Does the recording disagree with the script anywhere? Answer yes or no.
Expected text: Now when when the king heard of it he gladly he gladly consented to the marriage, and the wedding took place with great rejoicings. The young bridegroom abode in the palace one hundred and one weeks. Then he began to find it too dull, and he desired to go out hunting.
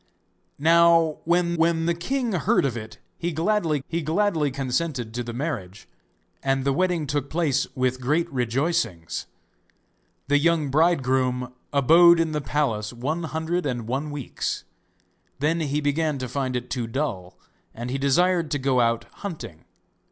no